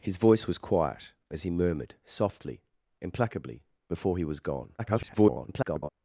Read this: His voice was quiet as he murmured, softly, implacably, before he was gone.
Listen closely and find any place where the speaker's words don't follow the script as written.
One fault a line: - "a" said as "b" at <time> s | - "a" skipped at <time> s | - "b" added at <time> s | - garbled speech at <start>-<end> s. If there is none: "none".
- garbled speech at 4.8-5.9 s